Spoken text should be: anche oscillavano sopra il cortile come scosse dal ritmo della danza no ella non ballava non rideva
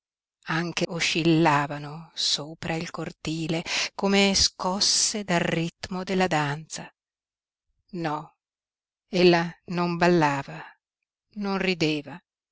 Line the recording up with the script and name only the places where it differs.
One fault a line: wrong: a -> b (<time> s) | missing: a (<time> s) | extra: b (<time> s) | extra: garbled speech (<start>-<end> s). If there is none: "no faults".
no faults